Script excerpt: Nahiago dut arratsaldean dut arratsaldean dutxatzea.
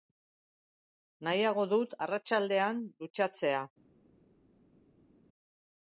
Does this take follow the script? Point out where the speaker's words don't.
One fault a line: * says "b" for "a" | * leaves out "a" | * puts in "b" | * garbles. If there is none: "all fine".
* leaves out "dut arratsaldean"